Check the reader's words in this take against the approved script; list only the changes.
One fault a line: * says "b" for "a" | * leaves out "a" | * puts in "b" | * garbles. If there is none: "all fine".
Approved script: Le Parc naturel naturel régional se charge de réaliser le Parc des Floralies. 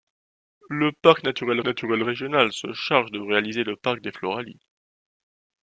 all fine